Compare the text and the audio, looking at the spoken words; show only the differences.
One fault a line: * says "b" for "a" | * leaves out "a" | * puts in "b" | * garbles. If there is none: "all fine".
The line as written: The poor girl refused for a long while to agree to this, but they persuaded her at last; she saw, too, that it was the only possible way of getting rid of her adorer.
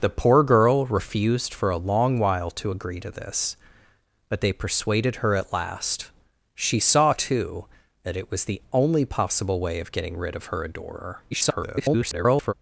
* garbles